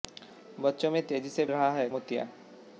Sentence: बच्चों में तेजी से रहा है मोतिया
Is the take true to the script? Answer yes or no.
yes